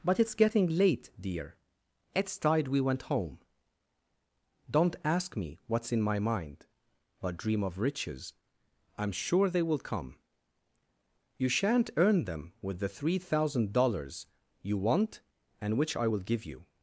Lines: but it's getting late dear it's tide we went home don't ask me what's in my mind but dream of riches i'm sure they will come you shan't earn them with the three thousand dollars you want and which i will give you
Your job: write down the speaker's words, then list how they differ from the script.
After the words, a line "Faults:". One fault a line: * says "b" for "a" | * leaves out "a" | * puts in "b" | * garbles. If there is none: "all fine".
but it's getting late dear it's tide we went home don't ask me what's in my mind but dream of riches i'm sure they will come you shan't earn them with the three thousand dollars you want and which i will give you
Faults:
all fine